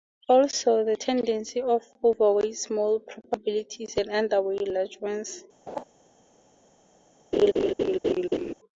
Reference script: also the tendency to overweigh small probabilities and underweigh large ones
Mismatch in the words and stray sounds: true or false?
true